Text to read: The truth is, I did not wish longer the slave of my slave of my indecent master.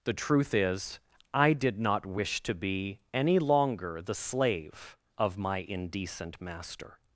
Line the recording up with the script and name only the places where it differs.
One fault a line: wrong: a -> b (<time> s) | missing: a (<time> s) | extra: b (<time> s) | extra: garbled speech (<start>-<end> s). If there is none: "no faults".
wrong: longer the slave of my -> to be any longer the (2.4 s)